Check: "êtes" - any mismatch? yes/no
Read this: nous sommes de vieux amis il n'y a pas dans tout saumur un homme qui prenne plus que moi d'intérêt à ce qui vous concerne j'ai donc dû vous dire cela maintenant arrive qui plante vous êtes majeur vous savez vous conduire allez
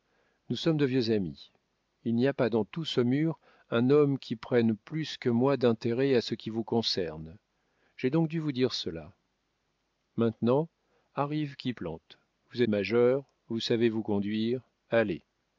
yes